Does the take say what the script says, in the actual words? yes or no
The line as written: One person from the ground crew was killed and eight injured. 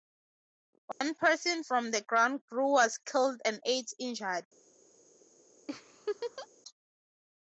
yes